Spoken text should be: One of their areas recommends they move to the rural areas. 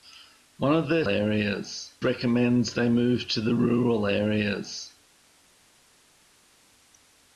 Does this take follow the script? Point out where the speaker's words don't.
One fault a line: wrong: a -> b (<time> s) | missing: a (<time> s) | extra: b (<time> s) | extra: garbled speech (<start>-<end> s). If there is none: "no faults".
no faults